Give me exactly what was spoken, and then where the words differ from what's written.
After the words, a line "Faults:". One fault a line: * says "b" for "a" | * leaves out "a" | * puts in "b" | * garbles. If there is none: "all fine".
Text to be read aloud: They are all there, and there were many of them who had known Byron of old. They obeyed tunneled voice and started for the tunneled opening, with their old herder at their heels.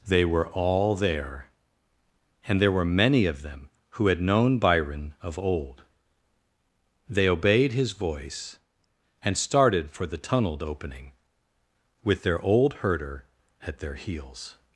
They were all there, and there were many of them who had known Byron of old. They obeyed his voice and started for the tunneled opening, with their old herder at their heels.
Faults:
* says "were" for "are"
* says "his" for "tunneled"